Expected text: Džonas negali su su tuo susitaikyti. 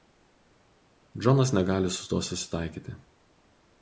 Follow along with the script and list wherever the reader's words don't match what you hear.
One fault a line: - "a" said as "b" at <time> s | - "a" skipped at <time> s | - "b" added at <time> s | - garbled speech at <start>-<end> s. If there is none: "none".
- "su" skipped at 2.1 s